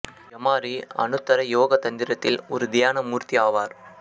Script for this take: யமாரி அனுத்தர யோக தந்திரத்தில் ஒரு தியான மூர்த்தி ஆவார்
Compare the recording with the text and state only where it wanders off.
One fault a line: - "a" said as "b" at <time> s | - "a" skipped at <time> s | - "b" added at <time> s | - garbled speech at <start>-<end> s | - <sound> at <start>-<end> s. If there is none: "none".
none